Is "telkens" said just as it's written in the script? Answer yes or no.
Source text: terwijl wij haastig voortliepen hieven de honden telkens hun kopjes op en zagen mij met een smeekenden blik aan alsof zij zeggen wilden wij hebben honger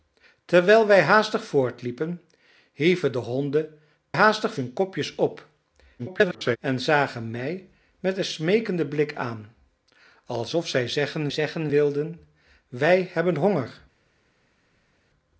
no